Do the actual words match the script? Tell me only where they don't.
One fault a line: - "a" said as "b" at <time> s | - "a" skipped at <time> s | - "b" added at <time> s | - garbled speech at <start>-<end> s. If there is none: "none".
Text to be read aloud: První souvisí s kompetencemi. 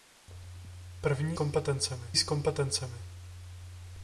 - "souvisí" said as "kompetencemi" at 1.3 s